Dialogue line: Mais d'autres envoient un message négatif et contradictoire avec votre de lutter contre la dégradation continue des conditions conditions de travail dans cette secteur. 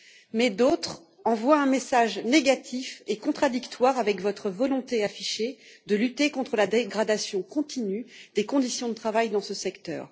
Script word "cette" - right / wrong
wrong